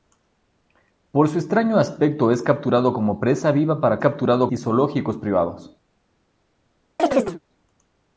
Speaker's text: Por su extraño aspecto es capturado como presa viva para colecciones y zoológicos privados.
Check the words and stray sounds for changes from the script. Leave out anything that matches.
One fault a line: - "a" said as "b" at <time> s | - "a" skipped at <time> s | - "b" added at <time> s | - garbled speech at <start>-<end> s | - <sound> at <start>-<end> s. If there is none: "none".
- "colecciones" said as "capturado" at 4.0 s
- chirp at 7.0-7.4 s